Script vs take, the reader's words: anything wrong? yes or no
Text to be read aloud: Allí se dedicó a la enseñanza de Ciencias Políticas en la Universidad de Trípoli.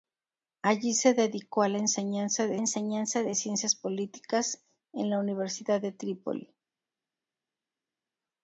yes